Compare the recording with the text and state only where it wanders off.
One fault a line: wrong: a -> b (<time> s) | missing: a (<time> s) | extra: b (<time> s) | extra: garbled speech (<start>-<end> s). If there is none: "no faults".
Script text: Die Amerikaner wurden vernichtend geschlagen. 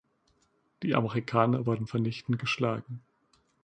no faults